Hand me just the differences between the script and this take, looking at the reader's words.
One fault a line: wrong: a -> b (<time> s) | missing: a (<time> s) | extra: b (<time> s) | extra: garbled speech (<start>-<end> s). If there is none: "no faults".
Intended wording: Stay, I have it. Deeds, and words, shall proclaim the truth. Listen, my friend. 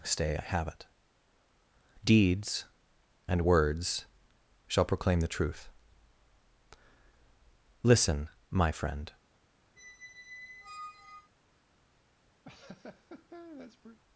no faults